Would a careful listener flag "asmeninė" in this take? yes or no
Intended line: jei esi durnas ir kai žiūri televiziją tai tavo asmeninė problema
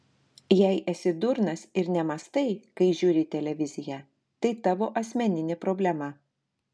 no